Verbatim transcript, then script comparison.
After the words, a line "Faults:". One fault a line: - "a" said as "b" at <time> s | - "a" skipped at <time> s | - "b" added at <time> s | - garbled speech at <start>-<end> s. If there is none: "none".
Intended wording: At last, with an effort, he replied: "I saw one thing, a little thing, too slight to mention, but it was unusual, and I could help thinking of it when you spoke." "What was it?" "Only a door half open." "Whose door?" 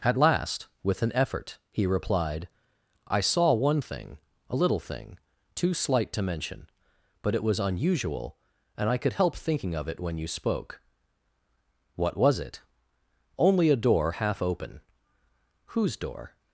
At last, with an effort, he replied: "I saw one thing, a little thing, too slight to mention, but it was unusual, and I could help thinking of it when you spoke." "What was it?" "Only a door half open." "Whose door?"
Faults:
none